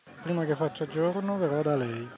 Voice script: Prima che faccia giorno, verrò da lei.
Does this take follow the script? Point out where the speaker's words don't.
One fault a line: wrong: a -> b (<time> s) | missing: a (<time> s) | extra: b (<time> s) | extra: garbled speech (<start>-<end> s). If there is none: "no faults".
no faults